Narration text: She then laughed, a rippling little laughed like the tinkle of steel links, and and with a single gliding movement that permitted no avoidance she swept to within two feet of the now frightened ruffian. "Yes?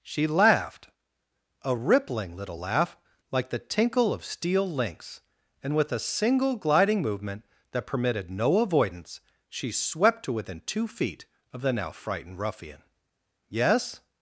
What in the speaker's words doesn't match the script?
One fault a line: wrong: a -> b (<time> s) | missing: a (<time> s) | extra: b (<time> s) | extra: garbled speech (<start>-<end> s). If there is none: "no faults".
missing: then (0.3 s)
wrong: laughed -> laugh (2.6 s)
missing: and (5.8 s)